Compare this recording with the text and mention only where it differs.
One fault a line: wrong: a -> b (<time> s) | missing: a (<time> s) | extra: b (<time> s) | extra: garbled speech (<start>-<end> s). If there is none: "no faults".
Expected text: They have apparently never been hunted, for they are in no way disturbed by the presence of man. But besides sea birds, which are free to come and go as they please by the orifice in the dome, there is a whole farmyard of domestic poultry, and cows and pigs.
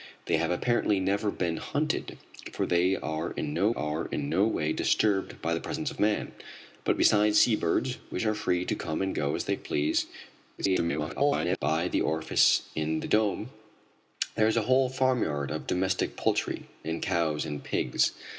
extra: are in no (3.7 s)
extra: garbled speech (10.6-11.6 s)